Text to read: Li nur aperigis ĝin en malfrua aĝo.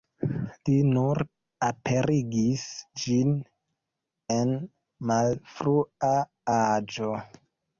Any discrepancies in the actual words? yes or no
no